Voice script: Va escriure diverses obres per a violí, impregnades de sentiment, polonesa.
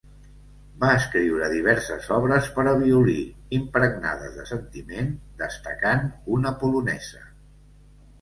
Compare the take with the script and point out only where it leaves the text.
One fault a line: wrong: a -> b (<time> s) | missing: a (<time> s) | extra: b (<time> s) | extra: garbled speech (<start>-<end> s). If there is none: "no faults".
extra: destacant una (5.4 s)